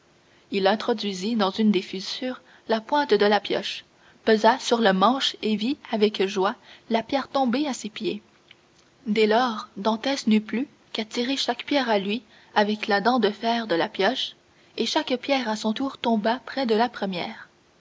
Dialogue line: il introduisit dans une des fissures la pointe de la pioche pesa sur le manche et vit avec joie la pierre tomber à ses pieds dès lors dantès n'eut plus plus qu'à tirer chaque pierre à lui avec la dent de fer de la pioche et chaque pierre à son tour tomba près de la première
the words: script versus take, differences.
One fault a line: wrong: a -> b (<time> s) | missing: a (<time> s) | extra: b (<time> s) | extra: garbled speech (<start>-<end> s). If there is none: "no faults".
missing: plus (10.7 s)